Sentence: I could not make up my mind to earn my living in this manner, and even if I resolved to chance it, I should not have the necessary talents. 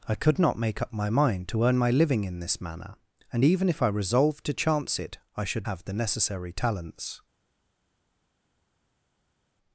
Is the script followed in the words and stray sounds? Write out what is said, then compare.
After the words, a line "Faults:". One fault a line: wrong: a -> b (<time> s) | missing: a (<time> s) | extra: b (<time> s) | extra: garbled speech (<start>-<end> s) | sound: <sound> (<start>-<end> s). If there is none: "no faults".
I could not make up my mind to earn my living in this manner, and even if I resolved to chance it, I should have the necessary talents.
Faults:
missing: not (5.7 s)